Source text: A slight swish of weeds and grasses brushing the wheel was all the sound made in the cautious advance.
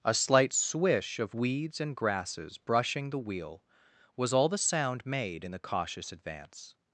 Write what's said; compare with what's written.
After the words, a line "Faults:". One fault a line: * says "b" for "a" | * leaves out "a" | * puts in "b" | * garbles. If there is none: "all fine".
A slight swish of weeds and grasses brushing the wheel was all the sound made in the cautious advance.
Faults:
all fine